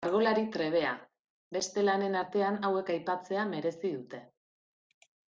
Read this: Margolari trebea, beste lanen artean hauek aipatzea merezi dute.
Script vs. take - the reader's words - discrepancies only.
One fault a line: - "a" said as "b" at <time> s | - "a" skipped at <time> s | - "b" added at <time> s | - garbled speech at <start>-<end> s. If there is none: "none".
none